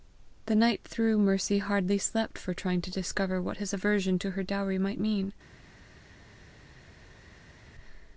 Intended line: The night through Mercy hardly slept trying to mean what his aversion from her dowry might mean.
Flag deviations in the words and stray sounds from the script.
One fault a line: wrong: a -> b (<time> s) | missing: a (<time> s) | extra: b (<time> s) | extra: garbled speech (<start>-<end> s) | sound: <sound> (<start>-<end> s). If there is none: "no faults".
extra: for (2.4 s)
wrong: mean -> discover (2.9 s)
wrong: from -> to (4.2 s)